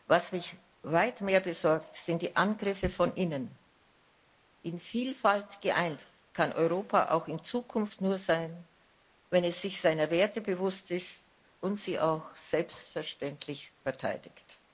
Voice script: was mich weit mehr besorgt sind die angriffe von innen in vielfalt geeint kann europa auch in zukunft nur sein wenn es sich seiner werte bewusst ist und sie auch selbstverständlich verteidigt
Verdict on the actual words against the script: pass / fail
pass